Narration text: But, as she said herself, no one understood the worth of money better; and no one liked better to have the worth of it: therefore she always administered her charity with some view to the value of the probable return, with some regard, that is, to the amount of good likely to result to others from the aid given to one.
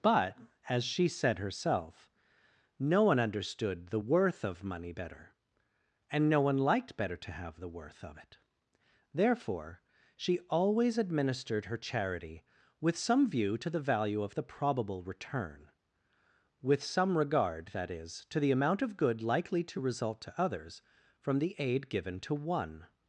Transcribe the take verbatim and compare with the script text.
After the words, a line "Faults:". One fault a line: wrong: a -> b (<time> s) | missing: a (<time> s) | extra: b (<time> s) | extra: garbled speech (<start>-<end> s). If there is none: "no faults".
But, as she said herself, no one understood the worth of money better; and no one liked better to have the worth of it: therefore she always administered her charity with some view to the value of the probable return, with some regard, that is, to the amount of good likely to result to others from the aid given to one.
Faults:
no faults